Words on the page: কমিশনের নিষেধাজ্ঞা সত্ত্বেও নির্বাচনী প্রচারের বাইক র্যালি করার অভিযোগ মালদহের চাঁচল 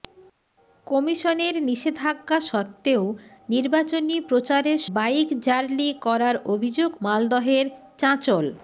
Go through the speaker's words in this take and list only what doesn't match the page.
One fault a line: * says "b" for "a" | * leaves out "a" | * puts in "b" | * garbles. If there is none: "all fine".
all fine